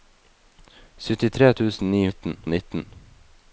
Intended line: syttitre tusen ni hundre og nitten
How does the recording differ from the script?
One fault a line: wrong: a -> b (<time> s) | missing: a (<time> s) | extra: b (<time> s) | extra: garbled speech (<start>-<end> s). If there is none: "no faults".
wrong: hundre -> nitten (2.1 s)